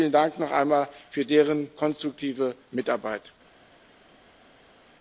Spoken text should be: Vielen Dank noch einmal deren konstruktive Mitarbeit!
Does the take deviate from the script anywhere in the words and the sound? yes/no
yes